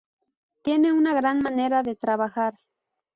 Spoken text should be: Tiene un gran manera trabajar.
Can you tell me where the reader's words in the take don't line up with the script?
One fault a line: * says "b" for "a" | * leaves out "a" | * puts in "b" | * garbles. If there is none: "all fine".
* says "una" for "un"
* puts in "de"